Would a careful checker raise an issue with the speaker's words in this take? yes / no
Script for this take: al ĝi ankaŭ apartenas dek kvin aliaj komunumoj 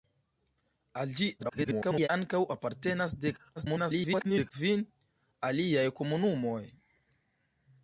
yes